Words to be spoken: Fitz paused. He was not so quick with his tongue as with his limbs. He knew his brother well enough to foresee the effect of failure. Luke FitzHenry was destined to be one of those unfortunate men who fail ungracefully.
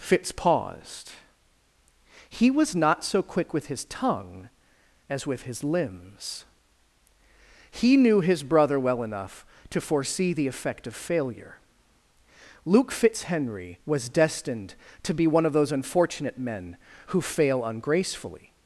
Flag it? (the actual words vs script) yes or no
no